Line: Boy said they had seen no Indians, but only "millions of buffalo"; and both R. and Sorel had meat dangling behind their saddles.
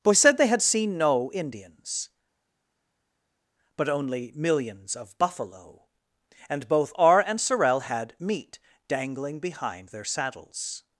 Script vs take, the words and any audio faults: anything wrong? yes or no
no